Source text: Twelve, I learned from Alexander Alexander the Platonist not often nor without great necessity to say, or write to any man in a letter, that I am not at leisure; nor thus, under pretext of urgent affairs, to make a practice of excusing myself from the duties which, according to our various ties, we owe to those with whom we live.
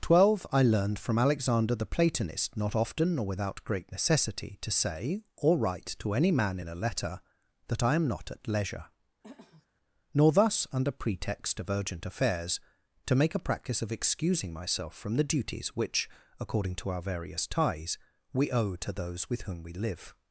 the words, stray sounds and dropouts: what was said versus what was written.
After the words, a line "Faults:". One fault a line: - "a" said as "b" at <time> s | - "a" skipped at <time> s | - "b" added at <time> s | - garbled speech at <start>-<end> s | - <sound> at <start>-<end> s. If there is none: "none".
Twelve, I learned from Alexander the Platonist not often nor without great necessity to say, or write to any man in a letter, that I am not at leisure; nor thus, under pretext of urgent affairs, to make a practice of excusing myself from the duties which, according to our various ties, we owe to those with whom we live.
Faults:
- "Alexander" skipped at 1.8 s
- throat clearing at 9.2-9.7 s